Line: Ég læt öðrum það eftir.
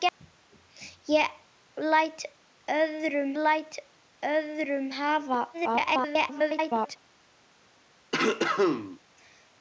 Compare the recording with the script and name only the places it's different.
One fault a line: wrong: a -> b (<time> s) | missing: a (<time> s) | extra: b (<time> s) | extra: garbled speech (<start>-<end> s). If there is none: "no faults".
extra: læt öðrum (3.4 s)
extra: garbled speech (5.5-7.0 s)